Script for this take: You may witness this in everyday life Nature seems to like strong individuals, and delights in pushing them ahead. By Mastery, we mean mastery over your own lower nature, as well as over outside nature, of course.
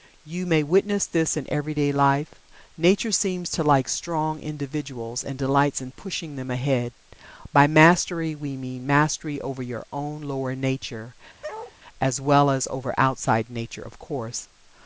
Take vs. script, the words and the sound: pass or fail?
fail